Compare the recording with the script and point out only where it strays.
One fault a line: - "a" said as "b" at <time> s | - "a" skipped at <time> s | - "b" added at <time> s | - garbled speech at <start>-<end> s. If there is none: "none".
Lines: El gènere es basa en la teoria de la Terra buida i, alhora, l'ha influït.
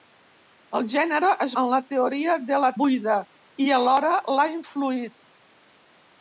- "basa" skipped at 1.5 s
- "Terra" skipped at 2.7 s